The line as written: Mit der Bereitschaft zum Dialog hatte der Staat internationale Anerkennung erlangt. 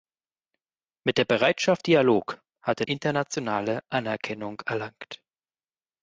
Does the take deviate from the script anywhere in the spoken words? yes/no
yes